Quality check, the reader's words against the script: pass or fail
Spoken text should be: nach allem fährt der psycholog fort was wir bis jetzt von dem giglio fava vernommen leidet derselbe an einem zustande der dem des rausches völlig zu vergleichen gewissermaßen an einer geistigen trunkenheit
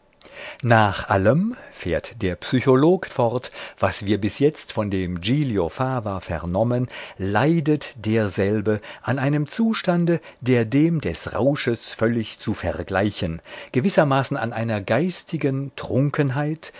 pass